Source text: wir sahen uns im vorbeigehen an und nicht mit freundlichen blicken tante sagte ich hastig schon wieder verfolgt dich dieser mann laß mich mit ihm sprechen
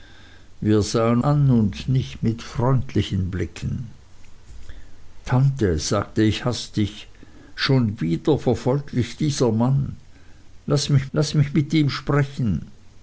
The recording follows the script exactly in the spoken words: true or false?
false